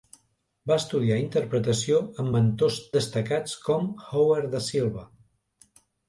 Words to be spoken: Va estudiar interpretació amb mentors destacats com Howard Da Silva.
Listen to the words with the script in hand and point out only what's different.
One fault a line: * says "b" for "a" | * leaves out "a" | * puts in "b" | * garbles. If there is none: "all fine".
all fine